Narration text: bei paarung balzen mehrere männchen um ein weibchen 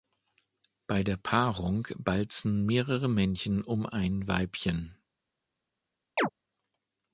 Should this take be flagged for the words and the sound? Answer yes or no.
yes